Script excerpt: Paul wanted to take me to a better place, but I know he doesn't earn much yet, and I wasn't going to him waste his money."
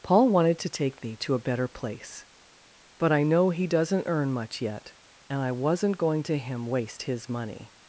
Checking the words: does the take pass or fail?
pass